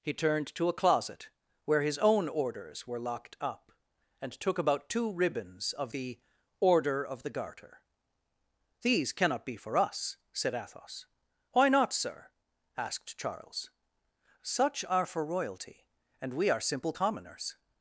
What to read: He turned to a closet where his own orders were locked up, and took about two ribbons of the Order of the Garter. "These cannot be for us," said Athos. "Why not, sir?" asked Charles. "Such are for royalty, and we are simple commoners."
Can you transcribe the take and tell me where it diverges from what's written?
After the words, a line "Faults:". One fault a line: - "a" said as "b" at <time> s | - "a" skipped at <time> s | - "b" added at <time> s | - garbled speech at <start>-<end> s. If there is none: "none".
He turned to a closet where his own orders were locked up, and took about two ribbons of the Order of the Garter. "These cannot be for us," said Athos. "Why not, sir?" asked Charles. "Such are for royalty, and we are simple commoners."
Faults:
none